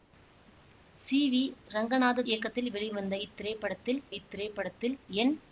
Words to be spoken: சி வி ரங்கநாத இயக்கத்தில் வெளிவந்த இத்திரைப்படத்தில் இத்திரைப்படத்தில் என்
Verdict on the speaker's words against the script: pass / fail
pass